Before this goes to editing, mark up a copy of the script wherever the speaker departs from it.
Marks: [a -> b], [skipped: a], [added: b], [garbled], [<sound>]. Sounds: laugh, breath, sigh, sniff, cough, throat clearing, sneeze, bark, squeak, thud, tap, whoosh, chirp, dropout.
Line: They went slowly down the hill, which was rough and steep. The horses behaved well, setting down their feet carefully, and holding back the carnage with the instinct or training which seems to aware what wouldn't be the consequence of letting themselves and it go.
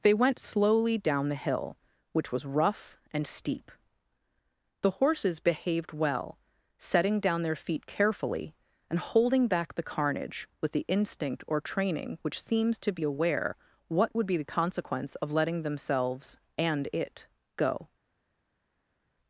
They went slowly down the hill, which was rough and steep. The horses behaved well, setting down their feet carefully, and holding back the carnage with the instinct or training which seems to [added: be] aware what [wouldn't -> would] be the consequence of letting themselves and it go.